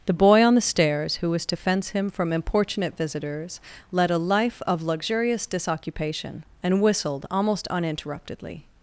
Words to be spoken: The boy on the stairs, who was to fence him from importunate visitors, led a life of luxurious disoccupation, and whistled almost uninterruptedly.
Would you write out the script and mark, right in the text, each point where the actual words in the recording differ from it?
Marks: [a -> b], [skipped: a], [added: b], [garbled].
The boy on the stairs, who was to fence him from importunate visitors, led a life of luxurious disoccupation, and whistled almost uninterruptedly.